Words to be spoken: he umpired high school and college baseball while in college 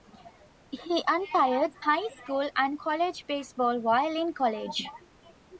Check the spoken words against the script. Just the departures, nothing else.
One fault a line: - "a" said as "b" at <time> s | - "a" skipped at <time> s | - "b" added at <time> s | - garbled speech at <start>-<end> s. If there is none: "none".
none